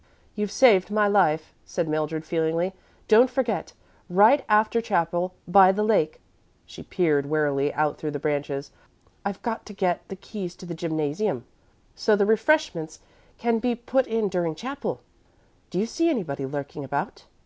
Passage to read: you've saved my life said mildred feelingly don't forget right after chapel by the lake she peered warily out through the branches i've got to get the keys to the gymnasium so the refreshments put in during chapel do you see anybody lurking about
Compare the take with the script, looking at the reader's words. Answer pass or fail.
fail